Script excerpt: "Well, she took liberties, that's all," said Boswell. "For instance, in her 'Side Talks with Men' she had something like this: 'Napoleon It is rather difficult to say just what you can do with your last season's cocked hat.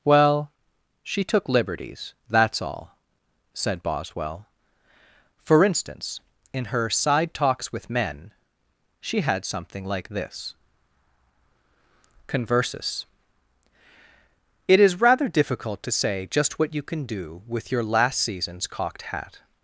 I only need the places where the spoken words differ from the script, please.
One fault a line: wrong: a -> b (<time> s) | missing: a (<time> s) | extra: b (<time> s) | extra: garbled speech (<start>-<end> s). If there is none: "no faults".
wrong: Napoleon -> Conversus (12.2 s)